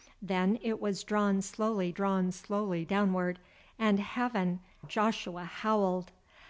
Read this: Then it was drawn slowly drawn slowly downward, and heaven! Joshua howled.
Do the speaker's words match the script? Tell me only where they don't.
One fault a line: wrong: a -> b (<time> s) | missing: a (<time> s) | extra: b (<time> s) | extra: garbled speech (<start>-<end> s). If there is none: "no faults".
no faults